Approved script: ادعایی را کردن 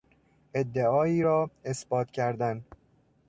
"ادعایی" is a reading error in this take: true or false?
false